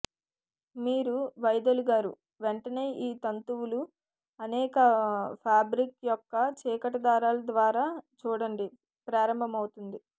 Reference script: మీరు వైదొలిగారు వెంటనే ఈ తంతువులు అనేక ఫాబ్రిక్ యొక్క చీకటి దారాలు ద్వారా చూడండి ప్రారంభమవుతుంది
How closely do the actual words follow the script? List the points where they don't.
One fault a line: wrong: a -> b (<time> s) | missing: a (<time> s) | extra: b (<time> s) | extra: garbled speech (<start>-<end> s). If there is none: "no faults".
no faults